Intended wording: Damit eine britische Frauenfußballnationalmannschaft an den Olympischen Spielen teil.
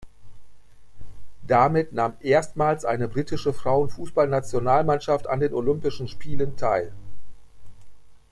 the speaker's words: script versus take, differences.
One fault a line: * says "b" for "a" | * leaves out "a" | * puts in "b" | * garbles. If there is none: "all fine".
* puts in "nahm erstmals"